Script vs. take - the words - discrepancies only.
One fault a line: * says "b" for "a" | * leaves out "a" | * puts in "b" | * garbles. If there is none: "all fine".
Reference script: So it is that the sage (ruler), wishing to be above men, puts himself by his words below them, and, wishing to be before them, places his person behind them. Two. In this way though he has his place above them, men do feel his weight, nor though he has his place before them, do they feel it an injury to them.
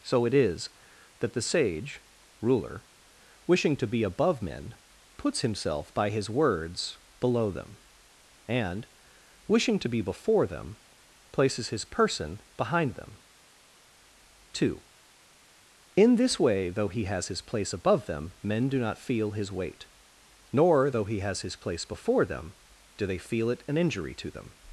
* puts in "not"